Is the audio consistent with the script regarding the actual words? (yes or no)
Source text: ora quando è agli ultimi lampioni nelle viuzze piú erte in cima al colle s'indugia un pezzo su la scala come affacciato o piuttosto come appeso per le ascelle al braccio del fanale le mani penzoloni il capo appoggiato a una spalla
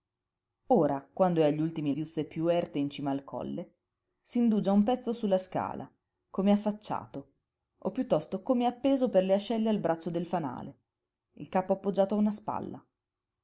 no